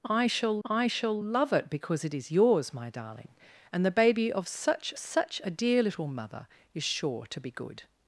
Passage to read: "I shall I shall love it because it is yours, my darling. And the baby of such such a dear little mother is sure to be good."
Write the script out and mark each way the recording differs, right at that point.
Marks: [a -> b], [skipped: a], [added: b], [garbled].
"I shall I shall love it because it is yours, my darling. And the baby of such such a dear little mother is sure to be good."